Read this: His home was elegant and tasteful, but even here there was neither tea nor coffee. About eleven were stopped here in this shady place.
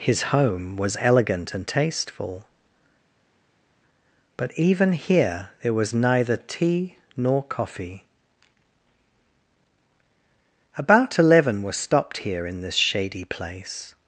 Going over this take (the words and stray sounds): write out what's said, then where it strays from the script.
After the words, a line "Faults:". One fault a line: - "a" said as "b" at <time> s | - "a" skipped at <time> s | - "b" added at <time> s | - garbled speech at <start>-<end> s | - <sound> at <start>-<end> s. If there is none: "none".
His home was elegant and tasteful, but even here there was neither tea nor coffee. About eleven were stopped here in this shady place.
Faults:
none